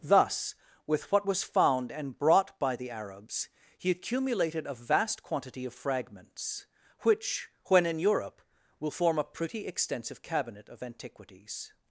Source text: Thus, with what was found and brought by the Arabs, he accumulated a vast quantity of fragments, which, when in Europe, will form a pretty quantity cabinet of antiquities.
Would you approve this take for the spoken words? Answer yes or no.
no